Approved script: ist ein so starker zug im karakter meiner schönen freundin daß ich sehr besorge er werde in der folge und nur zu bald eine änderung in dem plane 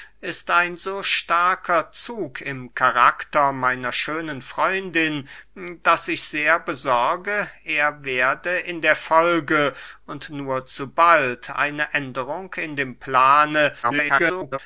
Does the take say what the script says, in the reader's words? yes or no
no